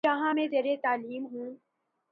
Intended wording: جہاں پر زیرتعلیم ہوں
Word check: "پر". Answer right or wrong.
wrong